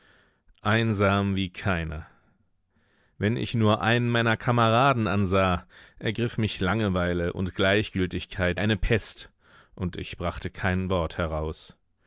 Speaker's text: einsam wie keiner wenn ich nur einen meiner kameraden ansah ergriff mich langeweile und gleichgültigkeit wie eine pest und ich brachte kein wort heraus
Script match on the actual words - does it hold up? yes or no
no